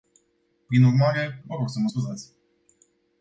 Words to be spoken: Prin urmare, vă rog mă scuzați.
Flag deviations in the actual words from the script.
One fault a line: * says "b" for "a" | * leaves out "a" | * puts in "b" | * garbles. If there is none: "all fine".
* puts in "să"